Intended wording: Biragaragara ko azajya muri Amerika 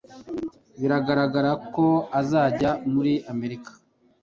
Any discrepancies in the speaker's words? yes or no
no